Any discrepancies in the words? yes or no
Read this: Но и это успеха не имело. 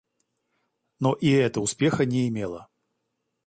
no